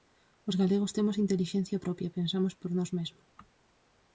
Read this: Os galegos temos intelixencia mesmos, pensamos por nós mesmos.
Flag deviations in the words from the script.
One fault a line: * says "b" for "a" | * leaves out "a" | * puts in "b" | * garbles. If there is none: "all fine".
* says "propia" for "mesmos"